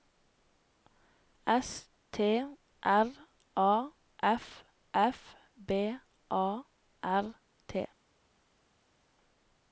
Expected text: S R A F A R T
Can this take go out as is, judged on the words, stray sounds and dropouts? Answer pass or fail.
fail